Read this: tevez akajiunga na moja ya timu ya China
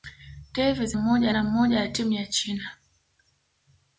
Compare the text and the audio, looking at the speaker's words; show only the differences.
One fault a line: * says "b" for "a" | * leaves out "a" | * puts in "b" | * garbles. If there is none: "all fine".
* says "moja" for "akajiunga"